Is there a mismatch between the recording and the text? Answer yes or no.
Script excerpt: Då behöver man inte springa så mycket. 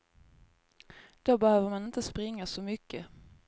no